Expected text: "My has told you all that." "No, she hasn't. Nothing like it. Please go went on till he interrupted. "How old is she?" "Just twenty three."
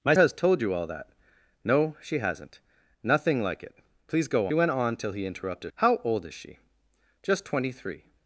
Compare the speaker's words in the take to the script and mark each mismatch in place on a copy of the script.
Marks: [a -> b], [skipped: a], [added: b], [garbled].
"My has told you all that." "No, she hasn't. Nothing like it. Please go went on till he interrupted. "How old is she?" "Just twenty three."